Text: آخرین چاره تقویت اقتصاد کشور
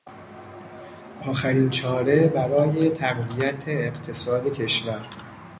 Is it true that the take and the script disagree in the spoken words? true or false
true